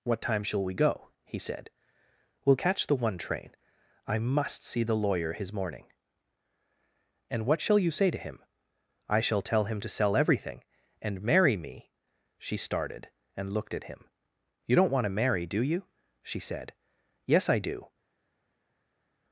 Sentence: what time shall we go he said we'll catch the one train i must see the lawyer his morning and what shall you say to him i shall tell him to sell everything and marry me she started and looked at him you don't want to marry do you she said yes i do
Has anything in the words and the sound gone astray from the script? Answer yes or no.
no